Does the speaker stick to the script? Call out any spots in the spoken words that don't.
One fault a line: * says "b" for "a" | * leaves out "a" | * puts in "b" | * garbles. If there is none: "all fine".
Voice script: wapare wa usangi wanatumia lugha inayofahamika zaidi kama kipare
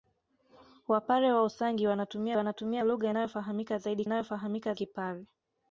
* puts in "wanatumia"
* says "inayofahamika" for "kama"